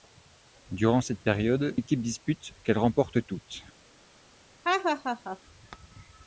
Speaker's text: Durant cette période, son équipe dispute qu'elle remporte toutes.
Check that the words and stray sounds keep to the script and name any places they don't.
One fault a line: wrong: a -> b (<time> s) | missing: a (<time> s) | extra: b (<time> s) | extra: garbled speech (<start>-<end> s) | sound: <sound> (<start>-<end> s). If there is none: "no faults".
missing: son (1.8 s)
sound: laugh (4.6-5.4 s)